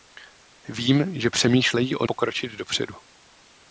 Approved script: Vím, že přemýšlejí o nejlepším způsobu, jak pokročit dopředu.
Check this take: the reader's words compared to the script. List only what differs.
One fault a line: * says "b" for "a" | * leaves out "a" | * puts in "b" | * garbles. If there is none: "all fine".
* leaves out "nejlepším způsobu jak"